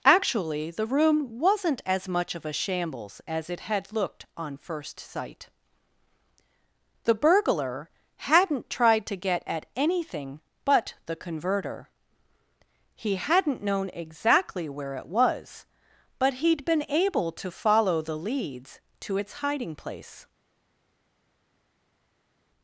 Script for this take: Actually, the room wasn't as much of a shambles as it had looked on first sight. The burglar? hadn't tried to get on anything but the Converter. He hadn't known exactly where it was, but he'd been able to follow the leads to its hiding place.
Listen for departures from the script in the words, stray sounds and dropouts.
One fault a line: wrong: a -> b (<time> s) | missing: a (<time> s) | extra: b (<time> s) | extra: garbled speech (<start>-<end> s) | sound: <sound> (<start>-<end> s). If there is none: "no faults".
wrong: on -> at (9.5 s)